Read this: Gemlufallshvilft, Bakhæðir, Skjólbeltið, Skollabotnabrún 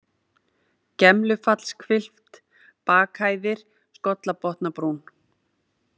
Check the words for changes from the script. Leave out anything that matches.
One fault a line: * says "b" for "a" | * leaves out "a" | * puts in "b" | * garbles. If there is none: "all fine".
* leaves out "Skjólbeltið"